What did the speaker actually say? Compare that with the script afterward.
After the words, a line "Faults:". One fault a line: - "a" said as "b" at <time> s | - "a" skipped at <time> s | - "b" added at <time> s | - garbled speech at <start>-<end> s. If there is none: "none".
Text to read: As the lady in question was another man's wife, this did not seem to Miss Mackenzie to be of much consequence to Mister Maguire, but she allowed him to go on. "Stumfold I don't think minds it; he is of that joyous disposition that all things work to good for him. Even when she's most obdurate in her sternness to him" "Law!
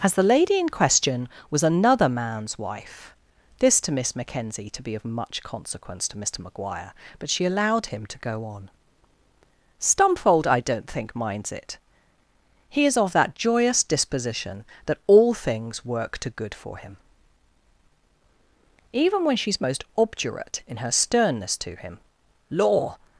As the lady in question was another man's wife, this to Miss Mackenzie to be of much consequence to Mister Maguire, but she allowed him to go on. "Stumfold I don't think minds it; he is of that joyous disposition that all things work to good for him. Even when she's most obdurate in her sternness to him" "Law!
Faults:
- "did not seem" skipped at 3.8 s